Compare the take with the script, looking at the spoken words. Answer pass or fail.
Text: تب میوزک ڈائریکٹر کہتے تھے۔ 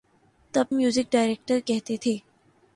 pass